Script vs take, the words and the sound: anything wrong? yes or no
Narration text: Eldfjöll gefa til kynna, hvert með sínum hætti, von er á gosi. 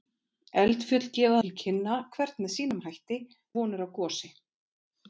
no